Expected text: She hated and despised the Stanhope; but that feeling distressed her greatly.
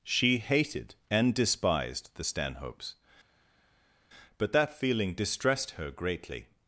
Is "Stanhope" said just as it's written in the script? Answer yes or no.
no